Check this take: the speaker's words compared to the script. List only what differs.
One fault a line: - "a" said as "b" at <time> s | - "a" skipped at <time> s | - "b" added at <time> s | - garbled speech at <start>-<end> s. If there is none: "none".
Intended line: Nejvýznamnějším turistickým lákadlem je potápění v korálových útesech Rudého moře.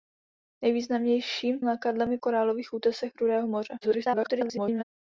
- "turistickým" skipped at 1.6 s
- "potápění" skipped at 2.2 s
- garbled speech at 3.8-4.8 s